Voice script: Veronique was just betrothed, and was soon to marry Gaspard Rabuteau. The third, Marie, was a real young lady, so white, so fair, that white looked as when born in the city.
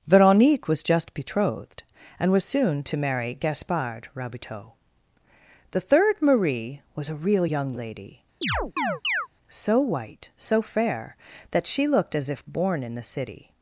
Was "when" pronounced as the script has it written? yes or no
no